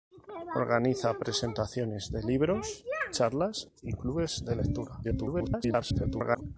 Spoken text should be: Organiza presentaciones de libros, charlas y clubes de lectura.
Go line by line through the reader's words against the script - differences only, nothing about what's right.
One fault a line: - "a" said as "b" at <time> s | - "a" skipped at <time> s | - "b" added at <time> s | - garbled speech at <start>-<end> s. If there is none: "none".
- garbled speech at 5.0-6.4 s